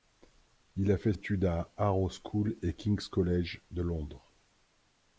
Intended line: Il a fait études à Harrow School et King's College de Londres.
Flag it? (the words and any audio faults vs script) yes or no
no